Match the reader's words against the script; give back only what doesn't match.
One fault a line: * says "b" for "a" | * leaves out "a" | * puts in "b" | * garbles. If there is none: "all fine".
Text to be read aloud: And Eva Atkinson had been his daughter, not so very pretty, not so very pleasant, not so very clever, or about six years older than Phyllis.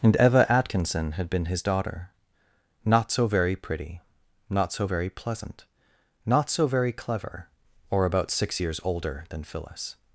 all fine